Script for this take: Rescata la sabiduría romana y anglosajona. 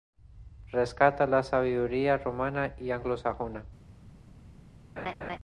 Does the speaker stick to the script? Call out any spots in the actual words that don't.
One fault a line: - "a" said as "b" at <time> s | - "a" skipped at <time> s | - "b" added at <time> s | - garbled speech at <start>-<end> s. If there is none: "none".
none